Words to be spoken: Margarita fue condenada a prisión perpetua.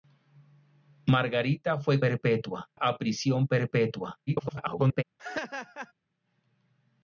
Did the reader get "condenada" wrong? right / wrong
wrong